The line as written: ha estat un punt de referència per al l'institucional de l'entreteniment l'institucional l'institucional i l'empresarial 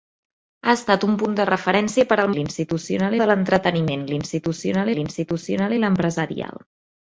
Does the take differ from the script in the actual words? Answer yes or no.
no